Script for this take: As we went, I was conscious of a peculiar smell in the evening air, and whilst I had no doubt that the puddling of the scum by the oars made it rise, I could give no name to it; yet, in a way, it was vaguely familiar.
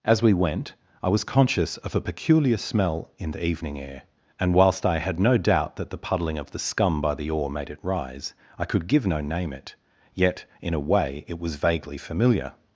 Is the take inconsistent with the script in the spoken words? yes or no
yes